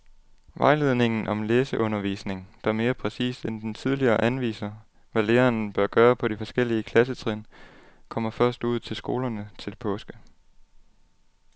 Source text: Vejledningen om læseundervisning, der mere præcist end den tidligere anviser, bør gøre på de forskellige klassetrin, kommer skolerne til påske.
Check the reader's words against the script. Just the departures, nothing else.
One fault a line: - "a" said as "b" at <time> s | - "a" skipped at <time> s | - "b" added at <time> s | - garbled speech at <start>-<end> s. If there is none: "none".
- "hvad læreren" added at 5.1 s
- "først ud til" added at 8.3 s